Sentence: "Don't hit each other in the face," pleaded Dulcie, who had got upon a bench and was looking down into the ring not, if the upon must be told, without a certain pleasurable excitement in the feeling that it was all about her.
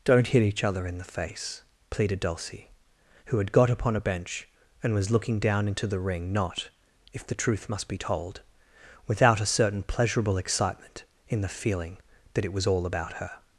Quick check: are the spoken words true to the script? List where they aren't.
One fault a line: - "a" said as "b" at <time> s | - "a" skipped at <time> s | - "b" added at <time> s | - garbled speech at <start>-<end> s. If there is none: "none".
- "upon" said as "truth" at 7.3 s